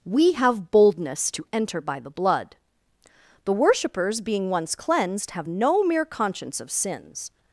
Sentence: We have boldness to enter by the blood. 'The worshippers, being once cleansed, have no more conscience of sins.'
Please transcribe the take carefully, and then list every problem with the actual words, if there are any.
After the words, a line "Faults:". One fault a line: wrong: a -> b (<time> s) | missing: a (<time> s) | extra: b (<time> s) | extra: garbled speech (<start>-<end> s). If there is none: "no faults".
We have boldness to enter by the blood. 'The worshippers, being once cleansed, have no mere conscience of sins.'
Faults:
wrong: more -> mere (5.8 s)